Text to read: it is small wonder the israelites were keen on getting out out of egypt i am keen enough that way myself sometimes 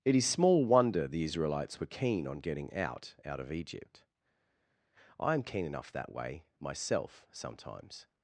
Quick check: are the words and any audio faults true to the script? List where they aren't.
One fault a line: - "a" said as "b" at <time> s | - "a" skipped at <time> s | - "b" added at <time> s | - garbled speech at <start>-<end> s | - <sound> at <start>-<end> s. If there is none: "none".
none